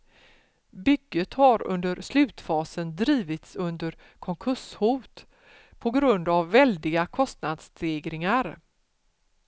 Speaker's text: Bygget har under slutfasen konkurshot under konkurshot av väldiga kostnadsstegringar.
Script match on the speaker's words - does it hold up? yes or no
no